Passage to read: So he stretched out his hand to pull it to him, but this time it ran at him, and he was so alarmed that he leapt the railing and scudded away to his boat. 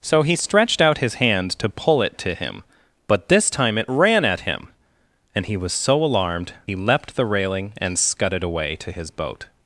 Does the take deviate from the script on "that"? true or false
true